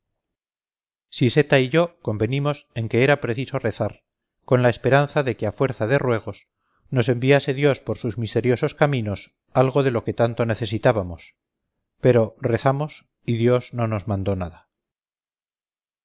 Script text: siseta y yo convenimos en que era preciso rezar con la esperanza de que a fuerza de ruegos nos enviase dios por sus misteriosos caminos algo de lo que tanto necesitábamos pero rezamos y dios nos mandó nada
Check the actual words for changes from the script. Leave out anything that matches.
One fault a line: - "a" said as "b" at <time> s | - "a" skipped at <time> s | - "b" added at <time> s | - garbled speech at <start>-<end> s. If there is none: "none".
- "no" added at 13.7 s